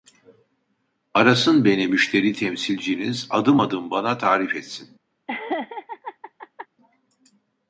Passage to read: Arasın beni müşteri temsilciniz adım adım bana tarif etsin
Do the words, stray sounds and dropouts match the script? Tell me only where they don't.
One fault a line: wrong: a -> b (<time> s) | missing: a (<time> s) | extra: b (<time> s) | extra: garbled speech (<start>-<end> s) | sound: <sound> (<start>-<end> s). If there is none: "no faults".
sound: laugh (5.3-6.7 s)